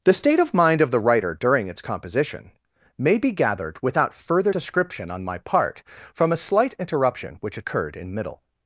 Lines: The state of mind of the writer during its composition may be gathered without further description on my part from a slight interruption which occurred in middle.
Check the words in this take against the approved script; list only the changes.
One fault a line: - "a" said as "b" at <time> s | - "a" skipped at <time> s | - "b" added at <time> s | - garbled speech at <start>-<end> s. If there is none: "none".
none